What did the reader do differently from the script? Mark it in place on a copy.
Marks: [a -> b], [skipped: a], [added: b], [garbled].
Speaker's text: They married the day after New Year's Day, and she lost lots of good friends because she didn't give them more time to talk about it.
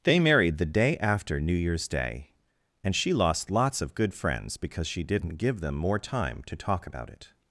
They married the day after New Year's Day, and she lost lots of good friends because she didn't give them more time to talk about it.